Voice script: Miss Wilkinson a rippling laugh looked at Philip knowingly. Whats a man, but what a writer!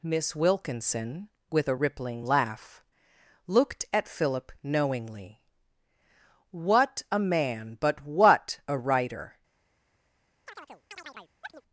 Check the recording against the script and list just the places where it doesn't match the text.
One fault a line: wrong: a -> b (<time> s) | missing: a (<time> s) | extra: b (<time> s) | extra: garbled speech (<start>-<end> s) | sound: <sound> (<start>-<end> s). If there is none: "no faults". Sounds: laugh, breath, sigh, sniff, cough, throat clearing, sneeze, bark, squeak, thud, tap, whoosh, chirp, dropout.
extra: with (1.5 s)
wrong: Whats -> What (6.5 s)
sound: chirp (10.5-11.6 s)